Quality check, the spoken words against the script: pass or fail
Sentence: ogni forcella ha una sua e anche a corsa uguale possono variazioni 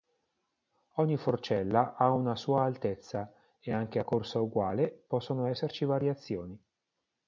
fail